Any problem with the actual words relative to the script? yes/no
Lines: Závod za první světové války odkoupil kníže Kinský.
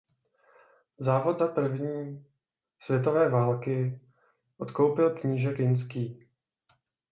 no